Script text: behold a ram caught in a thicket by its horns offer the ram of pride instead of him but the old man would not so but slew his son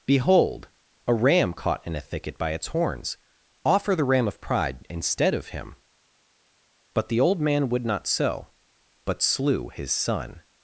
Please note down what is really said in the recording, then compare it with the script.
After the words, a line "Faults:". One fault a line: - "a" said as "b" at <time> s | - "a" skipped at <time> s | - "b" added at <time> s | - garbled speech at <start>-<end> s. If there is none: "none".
behold a ram caught in a thicket by its horns offer the ram of pride instead of him but the old man would not so but slew his son
Faults:
none